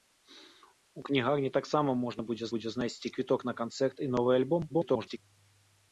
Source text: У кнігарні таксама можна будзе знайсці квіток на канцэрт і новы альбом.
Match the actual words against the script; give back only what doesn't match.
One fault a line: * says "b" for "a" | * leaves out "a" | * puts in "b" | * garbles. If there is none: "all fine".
* puts in "будзе"
* garbles